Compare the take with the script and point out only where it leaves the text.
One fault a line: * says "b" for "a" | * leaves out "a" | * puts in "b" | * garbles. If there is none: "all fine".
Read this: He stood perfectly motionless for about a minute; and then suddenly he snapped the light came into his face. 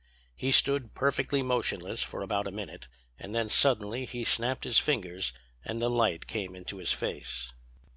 * puts in "his fingers and"